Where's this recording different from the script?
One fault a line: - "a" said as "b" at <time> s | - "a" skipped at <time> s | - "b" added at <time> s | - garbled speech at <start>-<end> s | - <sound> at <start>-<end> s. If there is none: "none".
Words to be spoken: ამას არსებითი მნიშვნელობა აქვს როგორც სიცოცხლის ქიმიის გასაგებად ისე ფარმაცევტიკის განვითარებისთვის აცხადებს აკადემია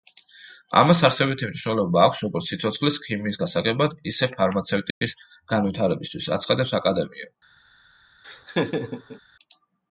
- dropout at 4.9-5.0 s
- laugh at 8.2-9.2 s